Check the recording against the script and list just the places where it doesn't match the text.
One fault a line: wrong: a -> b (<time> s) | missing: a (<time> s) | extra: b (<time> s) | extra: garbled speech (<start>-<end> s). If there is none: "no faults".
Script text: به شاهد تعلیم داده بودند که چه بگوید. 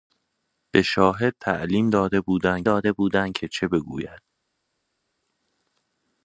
extra: داده بودند (2.6 s)